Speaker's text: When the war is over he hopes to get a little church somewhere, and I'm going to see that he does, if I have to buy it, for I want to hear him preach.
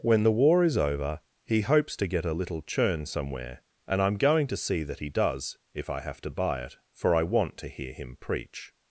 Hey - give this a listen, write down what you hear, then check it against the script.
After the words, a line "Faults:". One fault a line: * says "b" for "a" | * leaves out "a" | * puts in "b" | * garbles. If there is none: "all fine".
When the war is over he hopes to get a little churn somewhere, and I'm going to see that he does, if I have to buy it, for I want to hear him preach.
Faults:
* says "churn" for "church"